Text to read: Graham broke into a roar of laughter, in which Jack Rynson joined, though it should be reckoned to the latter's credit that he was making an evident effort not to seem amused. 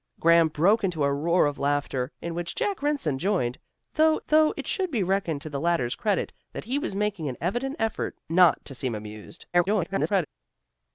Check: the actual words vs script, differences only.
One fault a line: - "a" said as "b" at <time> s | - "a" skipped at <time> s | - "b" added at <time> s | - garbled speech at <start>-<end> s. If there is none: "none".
- "though" added at 4.3 s
- garbled speech at 9.5-10.3 s